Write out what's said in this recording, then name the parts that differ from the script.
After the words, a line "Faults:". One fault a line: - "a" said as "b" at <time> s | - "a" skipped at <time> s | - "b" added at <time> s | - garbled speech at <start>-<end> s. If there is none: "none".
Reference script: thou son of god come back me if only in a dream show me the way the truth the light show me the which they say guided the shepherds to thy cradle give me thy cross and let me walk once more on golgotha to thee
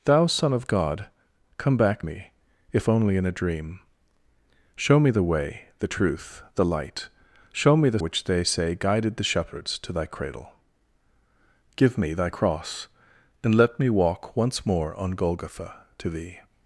thou son of god come back me if only in a dream show me the way the truth the light show me the which they say guided the shepherds to thy cradle give me thy cross and let me walk once more on golgotha to thee
Faults:
none